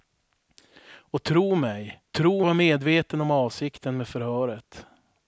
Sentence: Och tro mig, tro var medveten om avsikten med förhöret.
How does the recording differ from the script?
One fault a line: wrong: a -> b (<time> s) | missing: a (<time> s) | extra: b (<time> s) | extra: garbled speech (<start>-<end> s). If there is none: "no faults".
no faults